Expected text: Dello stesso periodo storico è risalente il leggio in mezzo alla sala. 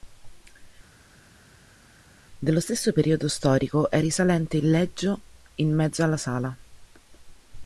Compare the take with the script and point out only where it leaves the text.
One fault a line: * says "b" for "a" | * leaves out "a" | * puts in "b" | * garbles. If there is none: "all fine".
all fine